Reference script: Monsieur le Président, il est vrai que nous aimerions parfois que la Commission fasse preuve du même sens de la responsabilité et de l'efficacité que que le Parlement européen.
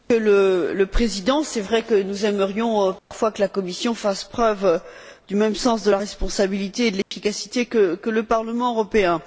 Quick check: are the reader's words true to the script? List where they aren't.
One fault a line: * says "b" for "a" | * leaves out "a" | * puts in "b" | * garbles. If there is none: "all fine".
* leaves out "que"